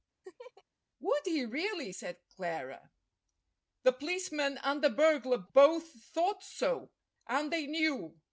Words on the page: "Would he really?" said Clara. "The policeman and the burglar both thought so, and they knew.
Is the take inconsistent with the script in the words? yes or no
no